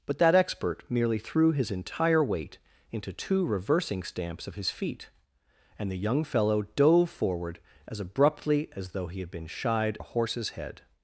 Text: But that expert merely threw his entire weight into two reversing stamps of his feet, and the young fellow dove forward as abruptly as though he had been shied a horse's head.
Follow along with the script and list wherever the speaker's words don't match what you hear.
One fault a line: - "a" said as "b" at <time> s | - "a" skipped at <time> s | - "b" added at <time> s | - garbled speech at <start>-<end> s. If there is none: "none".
none